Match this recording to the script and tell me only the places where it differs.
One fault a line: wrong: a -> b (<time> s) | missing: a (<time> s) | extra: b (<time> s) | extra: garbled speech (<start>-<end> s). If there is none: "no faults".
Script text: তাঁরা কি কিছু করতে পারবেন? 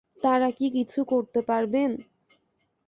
no faults